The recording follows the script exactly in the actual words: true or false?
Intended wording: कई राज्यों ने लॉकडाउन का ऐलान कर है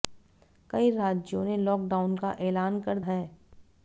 true